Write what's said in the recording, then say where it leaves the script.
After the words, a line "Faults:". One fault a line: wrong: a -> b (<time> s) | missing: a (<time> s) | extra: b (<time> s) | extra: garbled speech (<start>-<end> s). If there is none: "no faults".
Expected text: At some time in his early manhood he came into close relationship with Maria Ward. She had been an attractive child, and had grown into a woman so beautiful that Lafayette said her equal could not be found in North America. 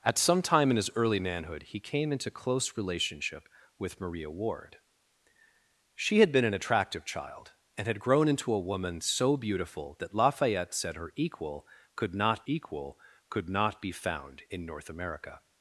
At some time in his early manhood he came into close relationship with Maria Ward. She had been an attractive child, and had grown into a woman so beautiful that Lafayette said her equal could not equal could not be found in North America.
Faults:
extra: equal could not (12.4 s)